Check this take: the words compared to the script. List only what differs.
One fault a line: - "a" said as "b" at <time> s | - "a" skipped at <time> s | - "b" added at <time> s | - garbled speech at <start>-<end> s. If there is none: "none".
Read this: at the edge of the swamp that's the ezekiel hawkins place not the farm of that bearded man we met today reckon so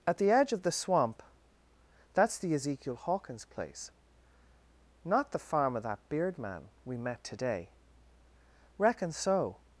- "bearded" said as "beard" at 6.1 s